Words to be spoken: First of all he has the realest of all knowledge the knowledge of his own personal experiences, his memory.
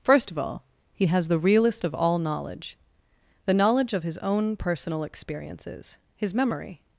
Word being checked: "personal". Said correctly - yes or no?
yes